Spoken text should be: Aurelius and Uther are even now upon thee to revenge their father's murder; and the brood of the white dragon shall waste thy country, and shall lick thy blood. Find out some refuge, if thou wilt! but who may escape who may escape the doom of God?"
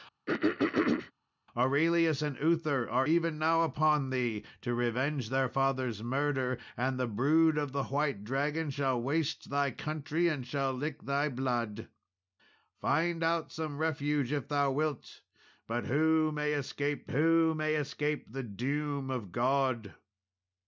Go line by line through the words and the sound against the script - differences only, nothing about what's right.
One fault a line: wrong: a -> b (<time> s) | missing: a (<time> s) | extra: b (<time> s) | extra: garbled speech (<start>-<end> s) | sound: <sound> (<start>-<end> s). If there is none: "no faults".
sound: throat clearing (0.3-1.1 s)